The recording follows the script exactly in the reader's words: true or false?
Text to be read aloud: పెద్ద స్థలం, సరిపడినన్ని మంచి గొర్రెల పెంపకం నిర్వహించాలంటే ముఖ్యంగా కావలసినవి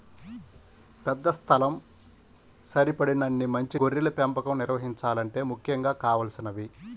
true